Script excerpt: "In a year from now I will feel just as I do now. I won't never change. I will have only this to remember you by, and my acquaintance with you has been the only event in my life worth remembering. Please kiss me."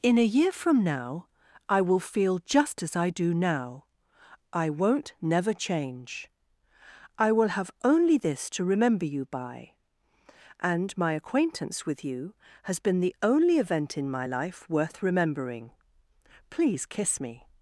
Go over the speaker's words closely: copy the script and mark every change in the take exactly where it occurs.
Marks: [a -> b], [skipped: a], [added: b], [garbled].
"In a year from now I will feel just as I do now. I won't never change. I will have only this to remember you by, and my acquaintance with you has been the only event in my life worth remembering. Please kiss me."